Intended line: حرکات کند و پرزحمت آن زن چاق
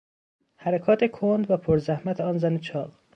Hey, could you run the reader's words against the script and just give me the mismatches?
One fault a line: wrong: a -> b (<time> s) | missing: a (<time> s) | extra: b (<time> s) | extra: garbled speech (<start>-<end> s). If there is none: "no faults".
no faults